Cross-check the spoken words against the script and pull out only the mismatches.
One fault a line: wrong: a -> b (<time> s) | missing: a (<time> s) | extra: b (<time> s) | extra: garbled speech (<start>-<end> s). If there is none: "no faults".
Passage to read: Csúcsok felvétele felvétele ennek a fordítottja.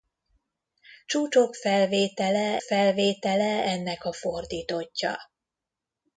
no faults